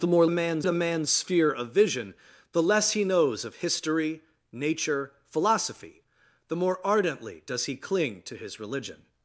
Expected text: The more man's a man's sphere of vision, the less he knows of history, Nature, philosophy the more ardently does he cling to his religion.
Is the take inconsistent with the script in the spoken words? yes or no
no